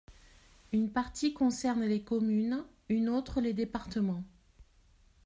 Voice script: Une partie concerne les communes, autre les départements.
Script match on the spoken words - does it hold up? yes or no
no